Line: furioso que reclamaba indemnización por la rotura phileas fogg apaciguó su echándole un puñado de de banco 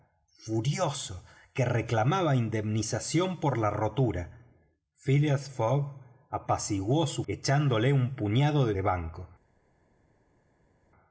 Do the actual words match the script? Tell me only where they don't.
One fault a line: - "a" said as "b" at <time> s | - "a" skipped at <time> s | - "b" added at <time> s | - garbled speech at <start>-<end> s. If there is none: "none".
none